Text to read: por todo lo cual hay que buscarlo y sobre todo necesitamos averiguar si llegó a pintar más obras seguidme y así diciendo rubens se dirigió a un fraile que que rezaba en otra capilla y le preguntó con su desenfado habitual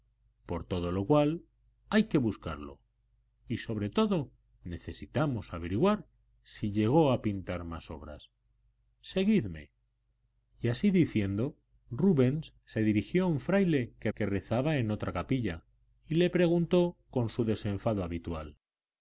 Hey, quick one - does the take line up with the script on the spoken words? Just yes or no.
yes